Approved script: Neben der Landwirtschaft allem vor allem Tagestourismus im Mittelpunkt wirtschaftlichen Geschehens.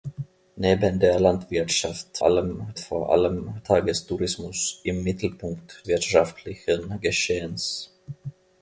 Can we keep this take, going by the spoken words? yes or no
yes